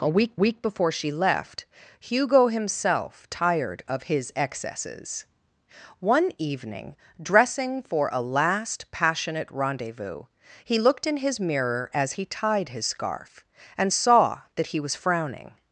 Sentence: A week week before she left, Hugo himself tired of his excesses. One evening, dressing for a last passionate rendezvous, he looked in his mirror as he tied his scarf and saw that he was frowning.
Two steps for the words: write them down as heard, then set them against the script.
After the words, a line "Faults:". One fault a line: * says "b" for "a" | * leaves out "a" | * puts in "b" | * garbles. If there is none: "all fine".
A week week before she left, Hugo himself tired of his excesses. One evening, dressing for a last passionate rendezvous, he looked in his mirror as he tied his scarf and saw that he was frowning.
Faults:
all fine